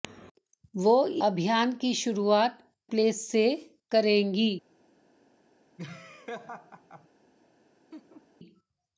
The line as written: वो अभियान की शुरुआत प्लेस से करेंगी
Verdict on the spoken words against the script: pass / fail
pass